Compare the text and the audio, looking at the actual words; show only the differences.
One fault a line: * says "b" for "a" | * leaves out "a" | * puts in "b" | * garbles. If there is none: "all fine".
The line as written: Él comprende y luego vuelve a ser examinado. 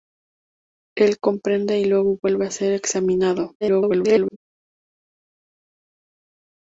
* garbles